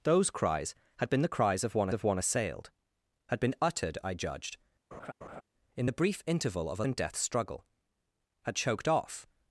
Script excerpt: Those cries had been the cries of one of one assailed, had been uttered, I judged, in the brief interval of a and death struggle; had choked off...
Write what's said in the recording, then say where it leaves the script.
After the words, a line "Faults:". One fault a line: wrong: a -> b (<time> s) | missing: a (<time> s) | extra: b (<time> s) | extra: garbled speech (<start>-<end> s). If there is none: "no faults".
Those cries had been the cries of one of one assailed, had been uttered, I judged, in the brief interval of a and death struggle; had choked off...
Faults:
no faults